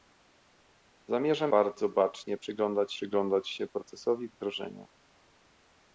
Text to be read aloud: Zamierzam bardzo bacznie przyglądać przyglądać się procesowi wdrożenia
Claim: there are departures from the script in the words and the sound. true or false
false